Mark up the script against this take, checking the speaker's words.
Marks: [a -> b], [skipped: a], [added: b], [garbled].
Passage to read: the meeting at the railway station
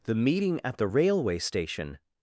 the meeting at the railway station